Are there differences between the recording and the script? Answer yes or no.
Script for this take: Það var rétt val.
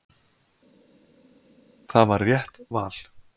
no